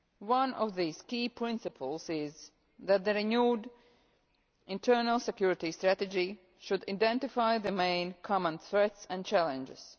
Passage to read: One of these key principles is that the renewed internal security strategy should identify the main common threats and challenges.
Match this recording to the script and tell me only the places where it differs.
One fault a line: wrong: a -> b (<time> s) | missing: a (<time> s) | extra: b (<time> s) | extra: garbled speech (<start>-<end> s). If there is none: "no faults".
no faults